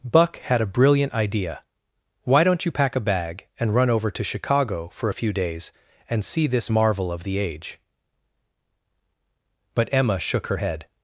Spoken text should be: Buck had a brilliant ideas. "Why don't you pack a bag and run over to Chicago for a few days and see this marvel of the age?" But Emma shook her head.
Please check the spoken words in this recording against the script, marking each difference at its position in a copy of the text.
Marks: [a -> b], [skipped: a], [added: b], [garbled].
Buck had a brilliant [ideas. -> idea] "Why don't you pack a bag and run over to Chicago for a few days and see this marvel of the age?" But Emma shook her head.